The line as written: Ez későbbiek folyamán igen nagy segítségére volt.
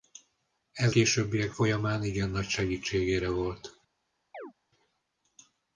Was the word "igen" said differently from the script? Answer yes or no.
no